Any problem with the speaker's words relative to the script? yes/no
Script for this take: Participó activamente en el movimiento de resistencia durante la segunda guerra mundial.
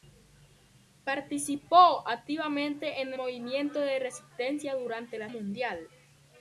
yes